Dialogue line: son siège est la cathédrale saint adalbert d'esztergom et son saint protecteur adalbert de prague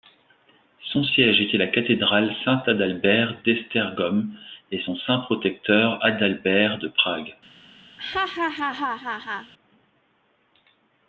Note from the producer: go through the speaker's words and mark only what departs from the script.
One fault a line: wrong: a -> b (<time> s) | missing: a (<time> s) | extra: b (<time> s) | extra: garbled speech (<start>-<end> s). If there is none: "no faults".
wrong: est -> était (1.4 s)